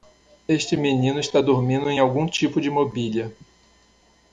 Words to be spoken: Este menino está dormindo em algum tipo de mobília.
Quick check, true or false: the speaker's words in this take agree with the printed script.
true